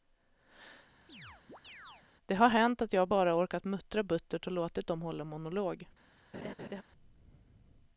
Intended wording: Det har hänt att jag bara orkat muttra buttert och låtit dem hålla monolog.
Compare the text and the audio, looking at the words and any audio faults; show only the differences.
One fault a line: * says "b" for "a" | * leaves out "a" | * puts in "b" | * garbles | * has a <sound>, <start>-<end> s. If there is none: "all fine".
* has a chirp, 1.1-2.1 s
* has a laugh, 6.3-6.8 s